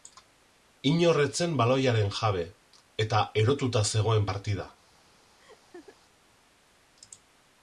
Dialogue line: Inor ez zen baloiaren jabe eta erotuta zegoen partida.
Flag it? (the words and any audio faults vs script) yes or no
yes